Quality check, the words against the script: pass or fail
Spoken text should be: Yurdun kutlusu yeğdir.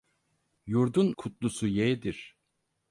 pass